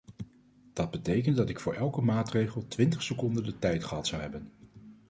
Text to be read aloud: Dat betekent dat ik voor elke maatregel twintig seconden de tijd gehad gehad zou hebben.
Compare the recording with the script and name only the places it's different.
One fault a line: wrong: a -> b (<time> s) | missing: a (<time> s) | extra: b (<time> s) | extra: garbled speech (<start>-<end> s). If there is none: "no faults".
missing: gehad (4.1 s)